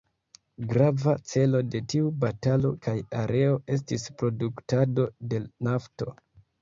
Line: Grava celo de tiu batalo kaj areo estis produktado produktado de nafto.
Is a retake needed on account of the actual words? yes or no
yes